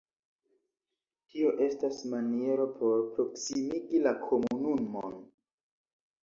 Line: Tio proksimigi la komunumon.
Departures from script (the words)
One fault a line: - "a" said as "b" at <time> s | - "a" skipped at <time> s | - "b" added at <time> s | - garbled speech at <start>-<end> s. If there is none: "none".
- "estas maniero por" added at 1.6 s